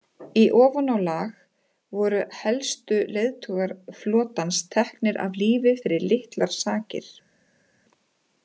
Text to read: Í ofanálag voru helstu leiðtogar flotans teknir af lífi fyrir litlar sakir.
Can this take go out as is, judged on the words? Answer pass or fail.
pass